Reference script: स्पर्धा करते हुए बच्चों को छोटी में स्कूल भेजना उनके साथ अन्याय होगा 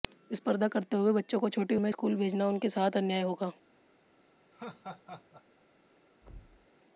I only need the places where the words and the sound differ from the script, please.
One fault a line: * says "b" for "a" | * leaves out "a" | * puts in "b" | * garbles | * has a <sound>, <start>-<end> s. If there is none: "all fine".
* has a laugh, 4.5-5.4 s
* has a thud, 6.2-6.7 s